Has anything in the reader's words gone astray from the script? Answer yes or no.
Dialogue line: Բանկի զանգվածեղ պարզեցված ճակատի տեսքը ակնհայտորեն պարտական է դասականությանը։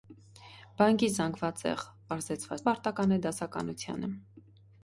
yes